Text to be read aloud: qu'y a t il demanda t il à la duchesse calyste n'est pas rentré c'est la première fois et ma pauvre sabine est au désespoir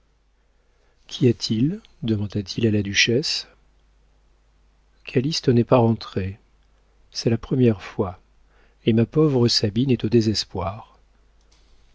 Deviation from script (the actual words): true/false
false